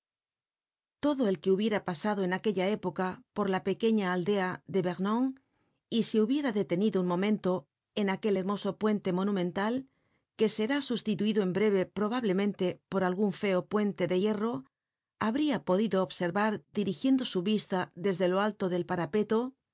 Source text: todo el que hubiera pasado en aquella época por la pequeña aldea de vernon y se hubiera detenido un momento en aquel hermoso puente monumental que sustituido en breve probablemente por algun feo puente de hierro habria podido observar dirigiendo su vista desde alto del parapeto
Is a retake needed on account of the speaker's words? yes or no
yes